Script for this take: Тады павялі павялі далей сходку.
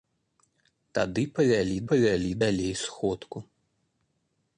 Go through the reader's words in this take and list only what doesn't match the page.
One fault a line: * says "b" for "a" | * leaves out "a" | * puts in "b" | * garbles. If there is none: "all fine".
all fine